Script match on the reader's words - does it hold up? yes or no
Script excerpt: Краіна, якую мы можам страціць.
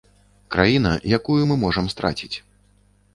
yes